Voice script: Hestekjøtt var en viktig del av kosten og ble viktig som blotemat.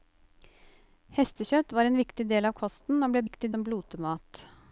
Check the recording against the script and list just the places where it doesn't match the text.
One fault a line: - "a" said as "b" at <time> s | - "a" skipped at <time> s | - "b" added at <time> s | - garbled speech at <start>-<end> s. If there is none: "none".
none